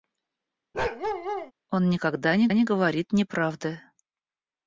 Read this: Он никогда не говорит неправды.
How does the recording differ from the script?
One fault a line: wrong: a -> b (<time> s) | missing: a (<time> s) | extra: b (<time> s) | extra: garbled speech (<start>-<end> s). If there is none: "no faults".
extra: не (2.5 s)